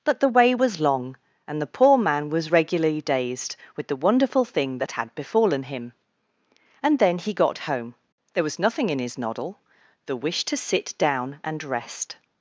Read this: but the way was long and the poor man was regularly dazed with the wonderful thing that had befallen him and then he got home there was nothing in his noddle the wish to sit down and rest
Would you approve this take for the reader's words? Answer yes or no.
yes